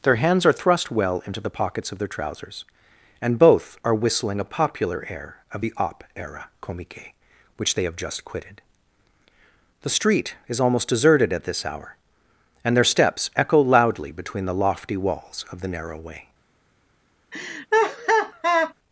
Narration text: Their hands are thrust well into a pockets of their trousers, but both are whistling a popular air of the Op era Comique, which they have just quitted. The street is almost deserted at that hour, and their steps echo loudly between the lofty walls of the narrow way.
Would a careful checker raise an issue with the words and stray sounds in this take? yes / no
yes